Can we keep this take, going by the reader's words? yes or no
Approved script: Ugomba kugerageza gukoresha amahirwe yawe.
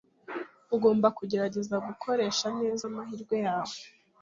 no